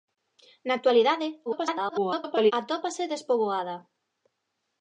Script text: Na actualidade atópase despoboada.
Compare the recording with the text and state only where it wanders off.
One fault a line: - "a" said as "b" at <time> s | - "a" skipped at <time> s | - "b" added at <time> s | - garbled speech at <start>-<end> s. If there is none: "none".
- garbled speech at 1.5-2.5 s